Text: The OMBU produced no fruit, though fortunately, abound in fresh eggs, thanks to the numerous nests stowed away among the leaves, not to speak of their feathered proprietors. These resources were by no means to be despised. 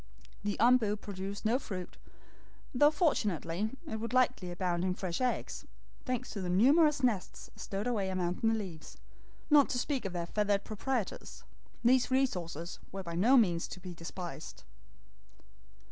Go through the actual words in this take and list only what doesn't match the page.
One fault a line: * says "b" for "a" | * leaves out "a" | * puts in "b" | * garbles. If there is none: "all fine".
* puts in "it would likely"